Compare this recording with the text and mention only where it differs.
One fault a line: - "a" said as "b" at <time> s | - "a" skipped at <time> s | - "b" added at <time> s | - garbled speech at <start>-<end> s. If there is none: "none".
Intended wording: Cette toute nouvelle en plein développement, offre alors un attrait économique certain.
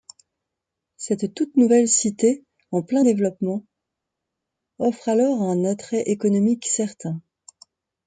- "cité" added at 1.9 s